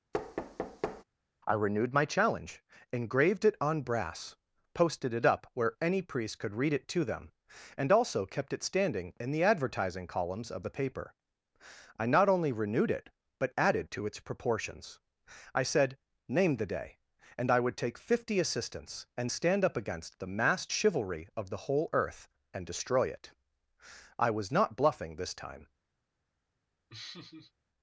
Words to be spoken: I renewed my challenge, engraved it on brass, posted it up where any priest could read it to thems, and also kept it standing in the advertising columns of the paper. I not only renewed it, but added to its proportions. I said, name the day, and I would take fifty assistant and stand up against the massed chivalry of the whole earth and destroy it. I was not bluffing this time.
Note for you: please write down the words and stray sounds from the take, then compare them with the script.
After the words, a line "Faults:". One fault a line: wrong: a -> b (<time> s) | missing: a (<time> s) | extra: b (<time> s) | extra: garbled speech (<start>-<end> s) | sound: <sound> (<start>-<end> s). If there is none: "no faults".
I renewed my challenge, engraved it on brass, posted it up where any priest could read it to them, and also kept it standing in the advertising columns of the paper. I not only renewed it, but added to its proportions. I said, name the day, and I would take fifty assistants and stand up against the massed chivalry of the whole earth and destroy it. I was not bluffing this time.
Faults:
sound: thud (0.1-1.0 s)
wrong: thems -> them (7.0 s)
wrong: assistant -> assistants (18.4 s)
sound: laugh (26.9-27.5 s)